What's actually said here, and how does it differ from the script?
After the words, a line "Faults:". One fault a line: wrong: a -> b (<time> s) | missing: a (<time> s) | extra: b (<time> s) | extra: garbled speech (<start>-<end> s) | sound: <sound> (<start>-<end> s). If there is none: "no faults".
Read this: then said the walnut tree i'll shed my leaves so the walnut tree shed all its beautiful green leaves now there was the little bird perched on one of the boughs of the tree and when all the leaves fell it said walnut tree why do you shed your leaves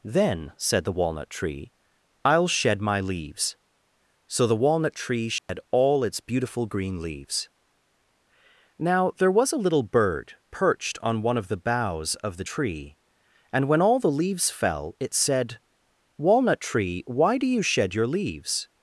then said the walnut tree i'll shed my leaves so the walnut tree shed all its beautiful green leaves now there was a little bird perched on one of the boughs of the tree and when all the leaves fell it said walnut tree why do you shed your leaves
Faults:
sound: dropout (5.4-5.5 s)
wrong: the -> a (9.5 s)